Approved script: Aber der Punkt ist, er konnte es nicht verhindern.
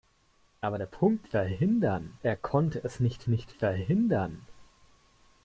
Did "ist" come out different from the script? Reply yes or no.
yes